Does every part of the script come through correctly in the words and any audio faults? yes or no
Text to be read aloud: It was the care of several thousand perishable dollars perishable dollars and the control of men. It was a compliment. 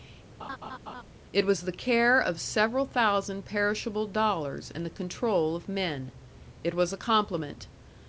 no